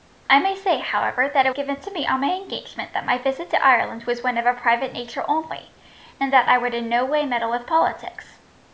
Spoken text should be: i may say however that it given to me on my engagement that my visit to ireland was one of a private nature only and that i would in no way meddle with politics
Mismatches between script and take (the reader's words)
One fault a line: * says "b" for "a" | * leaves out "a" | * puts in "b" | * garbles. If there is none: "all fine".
all fine